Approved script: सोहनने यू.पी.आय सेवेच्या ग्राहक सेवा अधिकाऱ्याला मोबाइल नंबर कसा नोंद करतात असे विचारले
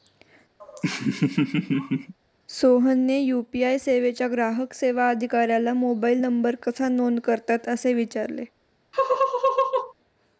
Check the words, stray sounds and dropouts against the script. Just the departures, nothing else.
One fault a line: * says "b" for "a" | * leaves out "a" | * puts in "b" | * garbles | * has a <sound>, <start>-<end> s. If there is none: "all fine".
* has a laugh, 0.6-2.1 s
* has a laugh, 8.9-9.9 s